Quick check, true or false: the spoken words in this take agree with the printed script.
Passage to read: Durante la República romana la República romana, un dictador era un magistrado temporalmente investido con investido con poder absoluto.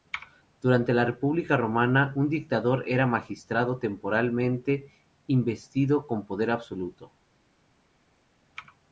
false